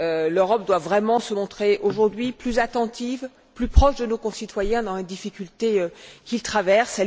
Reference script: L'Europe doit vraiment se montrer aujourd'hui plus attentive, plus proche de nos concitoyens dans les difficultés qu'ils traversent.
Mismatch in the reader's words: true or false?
false